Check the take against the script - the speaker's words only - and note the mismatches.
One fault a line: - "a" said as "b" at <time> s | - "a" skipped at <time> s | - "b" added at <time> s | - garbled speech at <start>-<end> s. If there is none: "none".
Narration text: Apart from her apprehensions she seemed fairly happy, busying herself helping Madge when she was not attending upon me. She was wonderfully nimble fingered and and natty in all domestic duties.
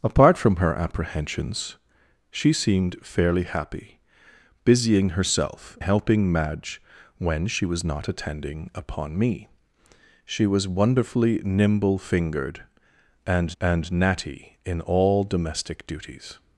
none